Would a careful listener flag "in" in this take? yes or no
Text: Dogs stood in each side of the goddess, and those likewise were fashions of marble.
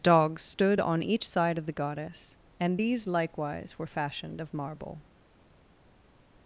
yes